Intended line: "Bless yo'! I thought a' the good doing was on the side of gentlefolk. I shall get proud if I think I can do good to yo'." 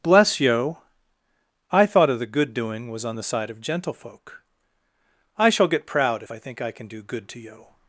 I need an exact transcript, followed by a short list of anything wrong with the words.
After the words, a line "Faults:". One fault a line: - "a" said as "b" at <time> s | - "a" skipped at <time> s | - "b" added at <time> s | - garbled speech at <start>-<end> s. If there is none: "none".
"Bless yo'! I thought of' the good doing was on the side of gentlefolk. I shall get proud if I think I can do good to yo'."
Faults:
- "a" said as "of" at 2.1 s